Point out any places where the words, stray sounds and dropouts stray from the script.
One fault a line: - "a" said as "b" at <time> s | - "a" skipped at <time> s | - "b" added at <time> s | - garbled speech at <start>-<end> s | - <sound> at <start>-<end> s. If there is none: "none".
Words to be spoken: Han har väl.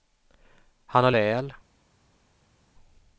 none